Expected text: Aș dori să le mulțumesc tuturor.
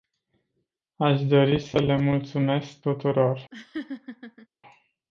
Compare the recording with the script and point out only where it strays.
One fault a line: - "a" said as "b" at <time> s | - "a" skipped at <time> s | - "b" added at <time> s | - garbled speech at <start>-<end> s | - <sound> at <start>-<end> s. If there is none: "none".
- laugh at 3.5-4.5 s